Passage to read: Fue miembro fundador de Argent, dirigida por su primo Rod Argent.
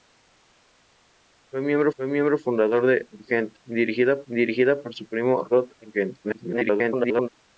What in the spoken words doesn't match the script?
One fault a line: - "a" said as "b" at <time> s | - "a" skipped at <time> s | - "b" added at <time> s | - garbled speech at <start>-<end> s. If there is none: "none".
- "fue miembro" added at 2.0 s
- "dirigida" added at 4.2 s
- garbled speech at 6.2-7.3 s